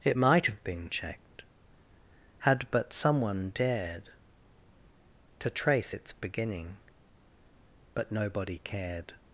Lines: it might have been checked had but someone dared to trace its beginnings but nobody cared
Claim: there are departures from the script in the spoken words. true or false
true